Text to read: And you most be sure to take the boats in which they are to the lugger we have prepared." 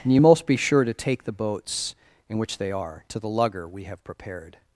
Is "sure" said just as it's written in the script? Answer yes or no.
yes